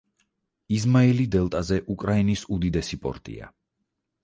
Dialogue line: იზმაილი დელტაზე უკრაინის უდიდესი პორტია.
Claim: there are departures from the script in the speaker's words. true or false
false